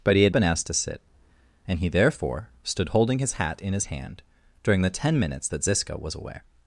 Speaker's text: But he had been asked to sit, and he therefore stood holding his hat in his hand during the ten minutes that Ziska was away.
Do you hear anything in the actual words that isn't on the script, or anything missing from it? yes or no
no